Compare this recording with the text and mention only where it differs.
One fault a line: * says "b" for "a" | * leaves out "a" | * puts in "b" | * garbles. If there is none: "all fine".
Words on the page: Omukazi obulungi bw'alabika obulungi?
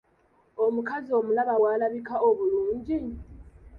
* says "omulaba" for "obulungi"